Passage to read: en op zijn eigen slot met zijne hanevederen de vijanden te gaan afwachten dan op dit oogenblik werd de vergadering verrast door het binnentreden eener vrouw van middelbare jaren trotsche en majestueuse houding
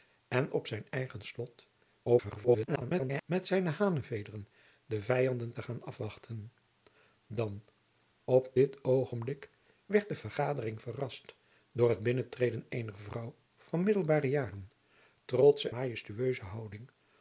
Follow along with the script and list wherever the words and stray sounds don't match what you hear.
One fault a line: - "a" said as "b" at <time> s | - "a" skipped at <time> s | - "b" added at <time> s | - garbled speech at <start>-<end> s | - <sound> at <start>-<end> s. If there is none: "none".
- garbled speech at 2.0-3.2 s
- "en" skipped at 15.7 s